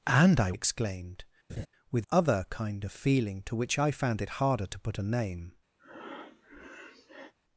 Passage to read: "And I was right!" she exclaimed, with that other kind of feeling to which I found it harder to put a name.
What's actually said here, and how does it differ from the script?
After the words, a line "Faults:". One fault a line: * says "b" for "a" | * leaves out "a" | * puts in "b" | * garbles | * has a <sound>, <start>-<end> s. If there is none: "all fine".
"And I exclaimed, with other kind of feeling to which I found it harder to put a name.
Faults:
* leaves out "was right she"
* has a laugh, 1.5-1.7 s
* leaves out "that"
* has a breath, 5.8-7.3 s